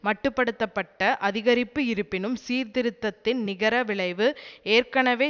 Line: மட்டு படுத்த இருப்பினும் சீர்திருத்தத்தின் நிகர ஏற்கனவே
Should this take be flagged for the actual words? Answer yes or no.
yes